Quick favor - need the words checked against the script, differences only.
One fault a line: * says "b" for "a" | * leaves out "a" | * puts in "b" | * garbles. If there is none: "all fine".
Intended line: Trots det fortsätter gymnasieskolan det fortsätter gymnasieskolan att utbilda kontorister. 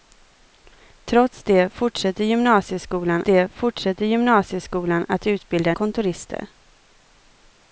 all fine